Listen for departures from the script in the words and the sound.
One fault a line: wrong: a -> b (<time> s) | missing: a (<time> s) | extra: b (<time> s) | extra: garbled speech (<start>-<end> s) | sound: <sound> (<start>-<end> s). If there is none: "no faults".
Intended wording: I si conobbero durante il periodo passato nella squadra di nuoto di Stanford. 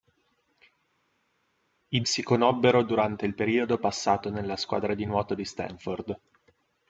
no faults